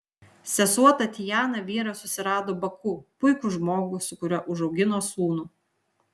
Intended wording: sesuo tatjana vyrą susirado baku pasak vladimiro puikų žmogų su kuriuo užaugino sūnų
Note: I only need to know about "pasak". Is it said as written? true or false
false